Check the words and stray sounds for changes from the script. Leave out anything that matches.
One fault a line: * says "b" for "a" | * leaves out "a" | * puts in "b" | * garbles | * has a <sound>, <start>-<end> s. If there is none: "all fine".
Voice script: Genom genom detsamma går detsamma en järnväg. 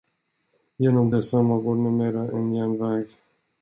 * leaves out "genom"
* says "numera" for "detsamma"